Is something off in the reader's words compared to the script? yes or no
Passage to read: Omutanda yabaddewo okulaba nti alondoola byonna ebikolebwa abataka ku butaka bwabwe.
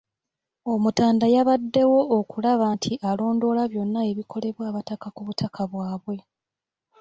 no